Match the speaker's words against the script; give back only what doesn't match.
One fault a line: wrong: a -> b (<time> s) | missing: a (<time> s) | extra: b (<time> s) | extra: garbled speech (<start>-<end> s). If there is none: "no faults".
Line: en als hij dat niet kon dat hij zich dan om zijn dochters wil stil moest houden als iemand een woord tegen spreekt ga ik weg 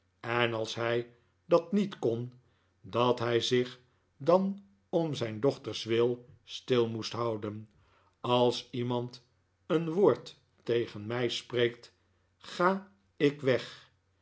extra: mij (11.1 s)